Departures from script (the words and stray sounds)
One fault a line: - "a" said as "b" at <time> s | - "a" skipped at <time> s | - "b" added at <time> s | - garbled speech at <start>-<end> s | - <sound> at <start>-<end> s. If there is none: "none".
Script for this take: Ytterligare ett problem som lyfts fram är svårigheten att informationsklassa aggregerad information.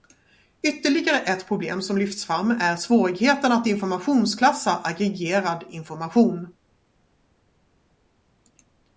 none